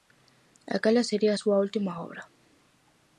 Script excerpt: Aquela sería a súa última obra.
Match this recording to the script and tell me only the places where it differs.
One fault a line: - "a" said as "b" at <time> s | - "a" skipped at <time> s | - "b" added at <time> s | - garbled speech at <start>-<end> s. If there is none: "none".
none